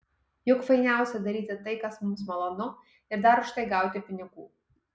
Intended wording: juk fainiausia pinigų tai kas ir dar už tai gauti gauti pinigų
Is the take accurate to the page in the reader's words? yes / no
no